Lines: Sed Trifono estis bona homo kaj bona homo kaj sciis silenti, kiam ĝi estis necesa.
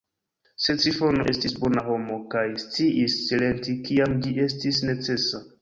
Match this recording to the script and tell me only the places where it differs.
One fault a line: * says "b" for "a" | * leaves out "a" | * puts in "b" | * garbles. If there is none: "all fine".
* leaves out "bona homo kaj"